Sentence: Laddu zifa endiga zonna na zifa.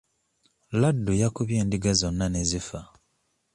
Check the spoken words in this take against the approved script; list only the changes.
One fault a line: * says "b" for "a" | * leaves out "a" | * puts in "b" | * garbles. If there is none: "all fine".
* says "yakubye" for "zifa"
* says "ne" for "na"